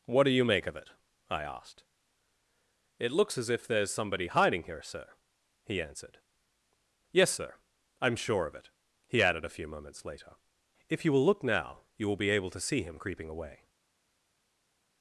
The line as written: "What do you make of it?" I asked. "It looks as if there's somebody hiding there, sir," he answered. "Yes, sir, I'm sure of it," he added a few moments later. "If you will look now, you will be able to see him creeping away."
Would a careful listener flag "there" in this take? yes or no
yes